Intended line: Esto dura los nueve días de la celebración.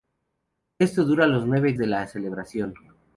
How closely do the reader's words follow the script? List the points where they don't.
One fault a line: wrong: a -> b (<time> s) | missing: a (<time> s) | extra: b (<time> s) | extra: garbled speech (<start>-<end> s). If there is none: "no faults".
missing: días (1.7 s)